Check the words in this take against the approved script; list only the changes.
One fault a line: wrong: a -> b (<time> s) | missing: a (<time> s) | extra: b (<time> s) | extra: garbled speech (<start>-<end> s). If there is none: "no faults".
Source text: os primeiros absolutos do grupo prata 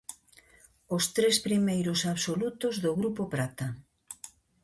extra: tres (1.1 s)